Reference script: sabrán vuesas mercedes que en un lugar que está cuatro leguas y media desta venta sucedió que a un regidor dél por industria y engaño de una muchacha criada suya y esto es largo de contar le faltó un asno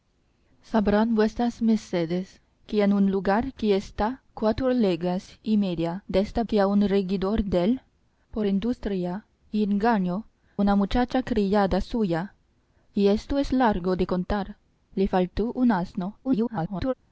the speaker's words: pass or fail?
fail